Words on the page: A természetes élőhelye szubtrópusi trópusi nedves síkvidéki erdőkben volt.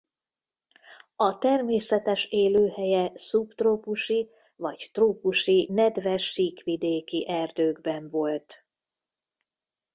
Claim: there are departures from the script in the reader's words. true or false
true